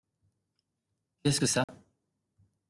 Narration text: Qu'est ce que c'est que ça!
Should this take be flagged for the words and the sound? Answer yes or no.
yes